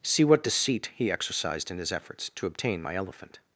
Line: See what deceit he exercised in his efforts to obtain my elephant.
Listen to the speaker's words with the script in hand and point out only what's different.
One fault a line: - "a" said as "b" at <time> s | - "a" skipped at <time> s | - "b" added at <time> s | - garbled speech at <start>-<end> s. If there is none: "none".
none